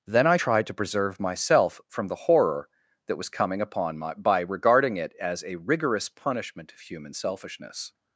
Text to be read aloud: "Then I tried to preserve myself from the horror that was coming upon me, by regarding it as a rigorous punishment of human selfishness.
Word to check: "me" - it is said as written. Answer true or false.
false